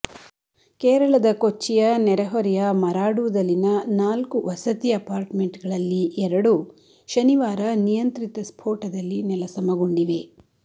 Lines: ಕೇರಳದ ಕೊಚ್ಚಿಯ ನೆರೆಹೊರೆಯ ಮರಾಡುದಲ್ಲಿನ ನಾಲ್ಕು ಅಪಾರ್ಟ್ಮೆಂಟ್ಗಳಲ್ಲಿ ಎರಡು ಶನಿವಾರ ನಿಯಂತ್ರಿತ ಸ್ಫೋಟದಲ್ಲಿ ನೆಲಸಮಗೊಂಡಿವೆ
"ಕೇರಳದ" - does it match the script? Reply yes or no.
yes